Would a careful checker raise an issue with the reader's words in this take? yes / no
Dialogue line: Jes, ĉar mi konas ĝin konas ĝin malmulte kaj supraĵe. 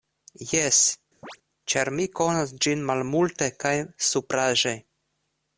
yes